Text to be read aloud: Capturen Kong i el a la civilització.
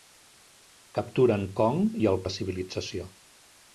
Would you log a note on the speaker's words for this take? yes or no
no